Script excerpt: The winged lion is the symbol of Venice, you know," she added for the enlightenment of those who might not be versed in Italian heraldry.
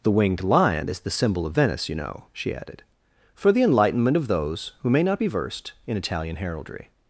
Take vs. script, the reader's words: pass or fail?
fail